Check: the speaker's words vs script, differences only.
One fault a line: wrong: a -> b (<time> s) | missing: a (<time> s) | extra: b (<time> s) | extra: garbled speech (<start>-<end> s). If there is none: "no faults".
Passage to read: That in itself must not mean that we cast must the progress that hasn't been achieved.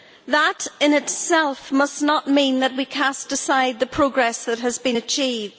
wrong: must -> aside (3.3 s)
wrong: hasn't -> has (4.6 s)